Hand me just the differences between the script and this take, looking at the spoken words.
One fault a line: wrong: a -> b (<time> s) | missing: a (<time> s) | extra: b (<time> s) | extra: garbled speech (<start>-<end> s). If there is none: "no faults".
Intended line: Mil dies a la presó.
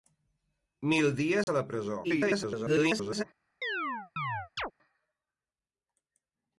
extra: garbled speech (2.0-3.2 s)